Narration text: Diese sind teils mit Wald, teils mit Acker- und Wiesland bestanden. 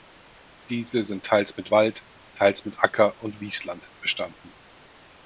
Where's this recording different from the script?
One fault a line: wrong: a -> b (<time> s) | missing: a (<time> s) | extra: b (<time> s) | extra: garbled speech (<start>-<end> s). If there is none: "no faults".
no faults